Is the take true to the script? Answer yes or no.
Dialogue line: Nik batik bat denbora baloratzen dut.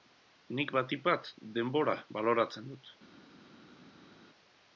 yes